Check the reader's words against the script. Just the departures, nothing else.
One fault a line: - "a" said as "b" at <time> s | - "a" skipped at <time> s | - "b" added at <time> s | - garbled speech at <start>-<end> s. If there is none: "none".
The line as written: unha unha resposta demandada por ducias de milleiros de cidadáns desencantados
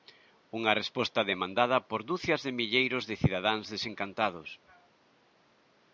- "unha" skipped at 0.7 s